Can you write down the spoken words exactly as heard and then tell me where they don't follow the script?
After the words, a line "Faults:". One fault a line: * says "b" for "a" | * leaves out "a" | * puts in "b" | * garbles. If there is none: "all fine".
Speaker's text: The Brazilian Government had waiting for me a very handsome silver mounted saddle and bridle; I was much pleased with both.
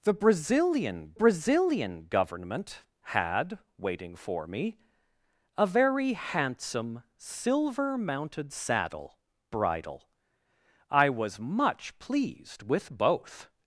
The Brazilian Brazilian Government had waiting for me a very handsome silver mounted saddle bridle; I was much pleased with both.
Faults:
* puts in "Brazilian"
* leaves out "and"